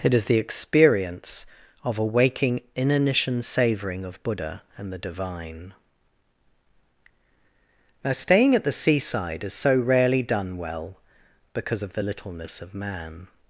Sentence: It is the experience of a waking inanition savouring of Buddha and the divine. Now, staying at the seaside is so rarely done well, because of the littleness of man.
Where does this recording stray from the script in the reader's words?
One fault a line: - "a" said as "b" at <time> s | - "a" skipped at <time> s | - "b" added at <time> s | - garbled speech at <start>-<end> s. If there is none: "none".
none